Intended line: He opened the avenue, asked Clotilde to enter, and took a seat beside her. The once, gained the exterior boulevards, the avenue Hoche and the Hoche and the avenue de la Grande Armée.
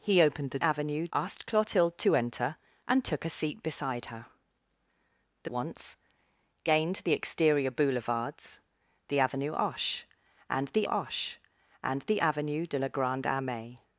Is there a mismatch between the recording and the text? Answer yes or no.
no